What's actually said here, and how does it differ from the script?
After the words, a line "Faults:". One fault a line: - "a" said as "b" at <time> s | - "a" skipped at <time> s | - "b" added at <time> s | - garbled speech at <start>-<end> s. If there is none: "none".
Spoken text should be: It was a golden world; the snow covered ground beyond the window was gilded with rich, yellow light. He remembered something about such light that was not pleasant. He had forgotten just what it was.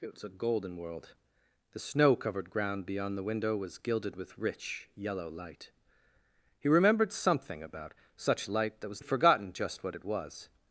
It was a golden world; the snow covered ground beyond the window was gilded with rich, yellow light. He remembered something about such light that was had forgotten just what it was.
Faults:
- "not pleasant He" skipped at 9.0 s